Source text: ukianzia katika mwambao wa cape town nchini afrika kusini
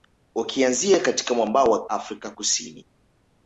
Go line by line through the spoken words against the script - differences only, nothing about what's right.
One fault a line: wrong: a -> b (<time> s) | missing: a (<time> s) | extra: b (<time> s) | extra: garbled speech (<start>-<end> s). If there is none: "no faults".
missing: cape town nchini (1.9 s)